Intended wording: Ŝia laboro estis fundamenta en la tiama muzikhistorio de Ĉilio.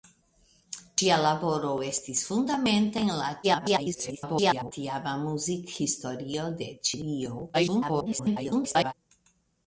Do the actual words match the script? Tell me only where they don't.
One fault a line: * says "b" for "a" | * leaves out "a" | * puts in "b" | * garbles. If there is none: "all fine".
* garbles
* garbles